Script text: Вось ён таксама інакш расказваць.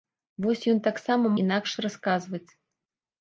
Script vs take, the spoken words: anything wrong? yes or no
no